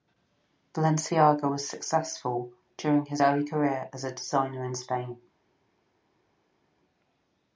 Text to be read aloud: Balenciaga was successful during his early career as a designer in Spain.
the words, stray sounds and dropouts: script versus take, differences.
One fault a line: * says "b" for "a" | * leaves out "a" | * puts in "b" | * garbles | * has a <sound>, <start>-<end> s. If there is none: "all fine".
all fine